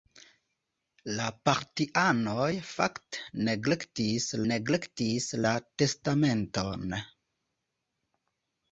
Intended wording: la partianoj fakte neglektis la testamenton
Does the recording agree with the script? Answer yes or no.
no